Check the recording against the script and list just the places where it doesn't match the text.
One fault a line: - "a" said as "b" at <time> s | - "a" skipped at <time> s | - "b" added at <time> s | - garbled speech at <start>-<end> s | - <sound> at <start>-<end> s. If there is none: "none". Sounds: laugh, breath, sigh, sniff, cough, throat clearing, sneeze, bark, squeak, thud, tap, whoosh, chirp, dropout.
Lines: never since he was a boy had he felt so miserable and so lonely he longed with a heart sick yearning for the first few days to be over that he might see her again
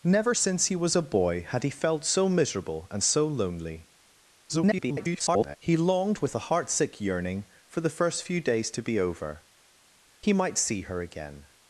- garbled speech at 4.5-5.6 s
- "that" skipped at 9.4 s